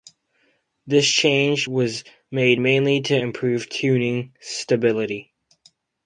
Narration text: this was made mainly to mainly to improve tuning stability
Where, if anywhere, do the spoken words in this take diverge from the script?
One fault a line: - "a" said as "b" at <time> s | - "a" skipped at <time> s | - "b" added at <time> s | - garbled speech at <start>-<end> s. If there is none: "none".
- "change" added at 1.1 s
- "mainly to" skipped at 3.2 s